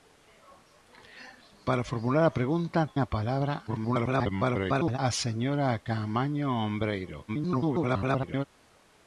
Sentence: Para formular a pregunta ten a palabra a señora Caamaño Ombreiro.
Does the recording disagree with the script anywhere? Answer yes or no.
yes